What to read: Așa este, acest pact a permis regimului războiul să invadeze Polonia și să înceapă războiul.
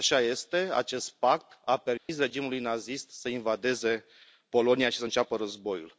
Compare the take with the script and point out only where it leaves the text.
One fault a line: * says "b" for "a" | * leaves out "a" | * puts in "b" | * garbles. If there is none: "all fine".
* says "nazist" for "războiul"